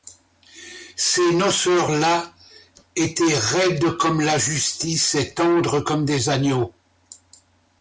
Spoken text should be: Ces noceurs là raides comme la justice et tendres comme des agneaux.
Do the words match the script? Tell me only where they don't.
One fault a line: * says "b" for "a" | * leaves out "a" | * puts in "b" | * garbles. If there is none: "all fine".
* puts in "étaient"